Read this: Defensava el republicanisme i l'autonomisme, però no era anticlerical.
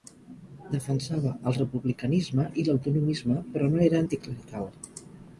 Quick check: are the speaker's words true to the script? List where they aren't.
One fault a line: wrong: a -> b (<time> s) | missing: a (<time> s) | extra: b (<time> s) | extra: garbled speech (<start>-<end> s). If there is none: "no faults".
no faults